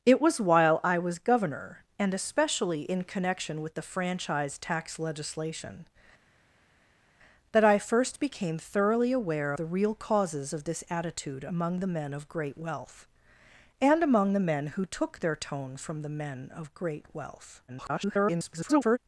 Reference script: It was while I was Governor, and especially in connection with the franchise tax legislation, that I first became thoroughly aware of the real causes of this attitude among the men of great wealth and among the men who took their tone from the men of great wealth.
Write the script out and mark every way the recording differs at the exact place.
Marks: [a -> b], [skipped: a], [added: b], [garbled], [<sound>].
It was while I was Governor, and especially in connection with the franchise tax legislation, that I first became thoroughly aware [skipped: of] the real causes of this attitude among the men of great wealth and among the men who took their tone from the men of great wealth. [garbled]